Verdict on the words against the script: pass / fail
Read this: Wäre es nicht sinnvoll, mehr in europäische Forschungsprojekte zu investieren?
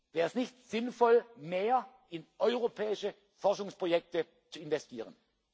pass